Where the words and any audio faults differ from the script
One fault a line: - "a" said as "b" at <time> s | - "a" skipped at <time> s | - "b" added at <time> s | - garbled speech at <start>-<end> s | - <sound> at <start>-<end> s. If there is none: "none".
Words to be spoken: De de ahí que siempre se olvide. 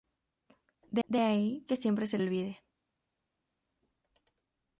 none